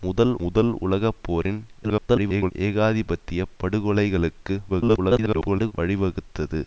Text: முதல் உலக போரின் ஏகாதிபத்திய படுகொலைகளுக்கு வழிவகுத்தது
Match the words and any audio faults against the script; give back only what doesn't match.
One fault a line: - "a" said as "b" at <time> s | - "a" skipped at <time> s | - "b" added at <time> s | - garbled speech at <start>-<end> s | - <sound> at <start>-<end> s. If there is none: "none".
- "முதல்" added at 0.4 s
- garbled speech at 1.8-2.5 s
- garbled speech at 4.7-5.7 s